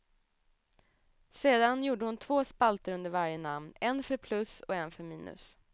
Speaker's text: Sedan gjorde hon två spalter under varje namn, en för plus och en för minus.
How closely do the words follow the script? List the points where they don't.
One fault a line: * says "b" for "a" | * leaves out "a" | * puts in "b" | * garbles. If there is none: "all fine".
all fine